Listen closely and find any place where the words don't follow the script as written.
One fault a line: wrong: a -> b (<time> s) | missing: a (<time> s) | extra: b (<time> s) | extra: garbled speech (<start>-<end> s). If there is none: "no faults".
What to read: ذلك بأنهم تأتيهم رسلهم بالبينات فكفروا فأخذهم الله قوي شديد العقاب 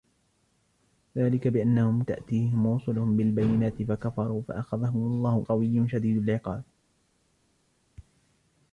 no faults